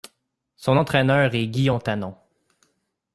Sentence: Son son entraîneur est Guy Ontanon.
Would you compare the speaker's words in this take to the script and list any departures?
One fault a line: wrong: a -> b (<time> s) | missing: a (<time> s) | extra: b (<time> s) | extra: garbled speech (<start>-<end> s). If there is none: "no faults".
missing: son (0.8 s)